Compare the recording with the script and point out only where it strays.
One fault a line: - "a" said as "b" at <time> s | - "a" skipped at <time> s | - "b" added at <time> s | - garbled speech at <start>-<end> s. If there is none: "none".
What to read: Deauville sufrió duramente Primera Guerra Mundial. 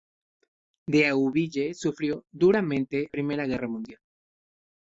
none